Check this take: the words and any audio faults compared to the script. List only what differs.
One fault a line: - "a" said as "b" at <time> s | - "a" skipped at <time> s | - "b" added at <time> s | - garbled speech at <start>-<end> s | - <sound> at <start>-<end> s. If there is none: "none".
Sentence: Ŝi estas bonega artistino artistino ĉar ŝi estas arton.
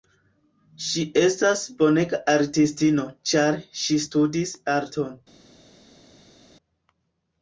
- "artistino" skipped at 3.1 s
- "estas" said as "studis" at 4.1 s